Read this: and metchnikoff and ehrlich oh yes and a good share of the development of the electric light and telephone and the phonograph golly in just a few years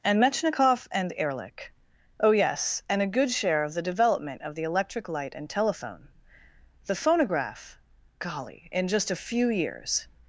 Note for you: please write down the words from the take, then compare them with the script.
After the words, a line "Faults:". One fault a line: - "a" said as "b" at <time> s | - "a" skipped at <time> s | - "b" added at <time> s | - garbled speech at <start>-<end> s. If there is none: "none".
and metchnikoff and ehrlich oh yes and a good share of the development of the electric light and telephone the phonograph golly in just a few years
Faults:
- "and" skipped at 6.1 s